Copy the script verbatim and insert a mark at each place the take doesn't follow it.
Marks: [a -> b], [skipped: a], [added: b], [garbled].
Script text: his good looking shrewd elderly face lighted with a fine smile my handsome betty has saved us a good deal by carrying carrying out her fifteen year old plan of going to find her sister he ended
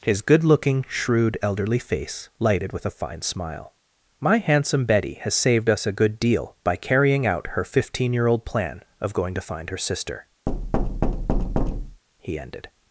his good looking shrewd elderly face lighted with a fine smile my handsome betty has saved us a good deal by carrying [skipped: carrying] out her fifteen year old plan of going to find her sister he ended